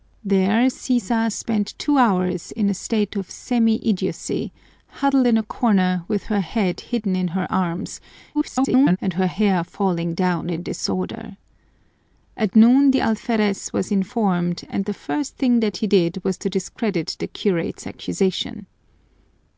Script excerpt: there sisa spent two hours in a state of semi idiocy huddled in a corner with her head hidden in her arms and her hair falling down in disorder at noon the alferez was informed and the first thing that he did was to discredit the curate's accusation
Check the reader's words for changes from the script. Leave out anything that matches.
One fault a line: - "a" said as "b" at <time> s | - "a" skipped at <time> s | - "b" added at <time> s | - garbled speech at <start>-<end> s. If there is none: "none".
- garbled speech at 8.3-9.0 s